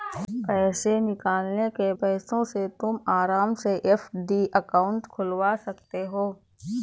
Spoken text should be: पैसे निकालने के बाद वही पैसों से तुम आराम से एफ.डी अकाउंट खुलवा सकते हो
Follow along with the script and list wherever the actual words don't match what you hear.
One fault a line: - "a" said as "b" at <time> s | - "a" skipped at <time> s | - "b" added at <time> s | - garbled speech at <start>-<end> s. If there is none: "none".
- "बाद वही" skipped at 1.9 s